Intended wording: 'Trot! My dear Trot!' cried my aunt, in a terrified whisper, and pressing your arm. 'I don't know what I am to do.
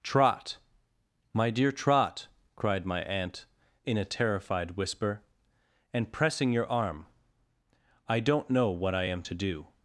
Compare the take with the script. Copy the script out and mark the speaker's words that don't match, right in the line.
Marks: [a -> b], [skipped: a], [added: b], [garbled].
'Trot! My dear Trot!' cried my aunt, in a terrified whisper, and pressing your arm. 'I don't know what I am to do.